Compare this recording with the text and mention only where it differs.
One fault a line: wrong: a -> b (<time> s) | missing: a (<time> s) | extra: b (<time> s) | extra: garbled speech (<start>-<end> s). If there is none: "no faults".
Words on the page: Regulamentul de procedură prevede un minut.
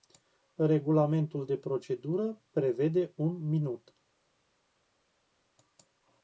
no faults